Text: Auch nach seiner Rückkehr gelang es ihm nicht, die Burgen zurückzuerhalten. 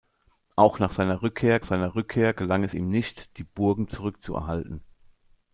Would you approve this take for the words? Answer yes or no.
no